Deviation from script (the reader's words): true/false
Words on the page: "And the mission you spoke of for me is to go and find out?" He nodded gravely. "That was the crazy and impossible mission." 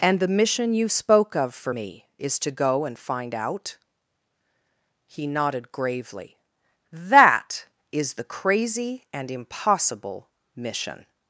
true